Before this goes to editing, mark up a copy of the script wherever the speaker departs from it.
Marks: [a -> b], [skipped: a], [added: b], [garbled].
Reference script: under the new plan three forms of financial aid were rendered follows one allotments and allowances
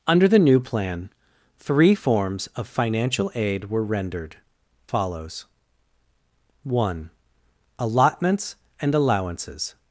under the new plan three forms of financial aid were rendered follows one allotments and allowances